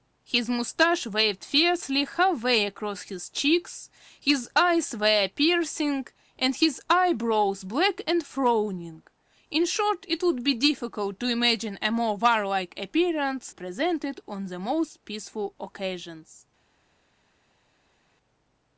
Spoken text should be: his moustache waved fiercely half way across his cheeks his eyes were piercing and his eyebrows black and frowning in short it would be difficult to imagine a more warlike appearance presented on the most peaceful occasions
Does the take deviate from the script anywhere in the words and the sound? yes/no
no